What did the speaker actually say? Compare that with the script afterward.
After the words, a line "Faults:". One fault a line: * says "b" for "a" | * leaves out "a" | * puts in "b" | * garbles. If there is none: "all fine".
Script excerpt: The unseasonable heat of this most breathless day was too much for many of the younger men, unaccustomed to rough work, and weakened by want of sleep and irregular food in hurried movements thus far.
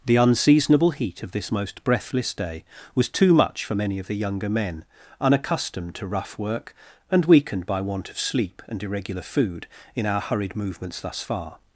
The unseasonable heat of this most breathless day was too much for many of the younger men, unaccustomed to rough work, and weakened by want of sleep and irregular food in our hurried movements thus far.
Faults:
* puts in "our"